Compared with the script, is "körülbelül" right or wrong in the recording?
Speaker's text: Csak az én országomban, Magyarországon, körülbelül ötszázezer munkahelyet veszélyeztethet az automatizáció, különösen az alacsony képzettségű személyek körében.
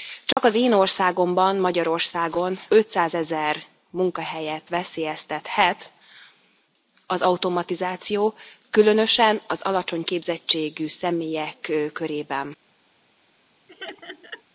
wrong